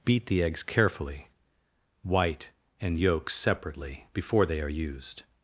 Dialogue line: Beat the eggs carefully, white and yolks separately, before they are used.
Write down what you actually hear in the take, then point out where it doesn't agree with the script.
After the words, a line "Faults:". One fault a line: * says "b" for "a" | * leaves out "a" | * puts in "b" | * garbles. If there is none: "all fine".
Beat the eggs carefully, white and yolks separately, before they are used.
Faults:
all fine